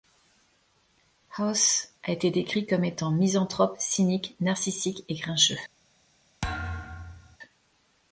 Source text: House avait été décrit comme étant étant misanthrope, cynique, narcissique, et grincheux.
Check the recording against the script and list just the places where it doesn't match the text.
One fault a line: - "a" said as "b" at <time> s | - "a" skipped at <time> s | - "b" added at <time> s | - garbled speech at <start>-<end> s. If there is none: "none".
- "avait" said as "a" at 2.0 s
- "étant" skipped at 3.1 s